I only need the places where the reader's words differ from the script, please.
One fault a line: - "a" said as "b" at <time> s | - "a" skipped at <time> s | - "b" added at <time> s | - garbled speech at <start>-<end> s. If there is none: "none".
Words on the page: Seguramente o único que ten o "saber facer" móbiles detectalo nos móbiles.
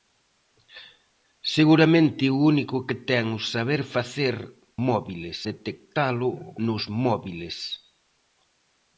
none